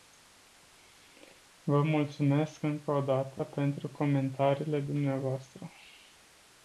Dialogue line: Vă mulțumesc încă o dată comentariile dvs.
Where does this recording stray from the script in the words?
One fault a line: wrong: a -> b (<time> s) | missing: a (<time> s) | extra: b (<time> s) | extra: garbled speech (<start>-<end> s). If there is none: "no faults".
extra: pentru (3.4 s)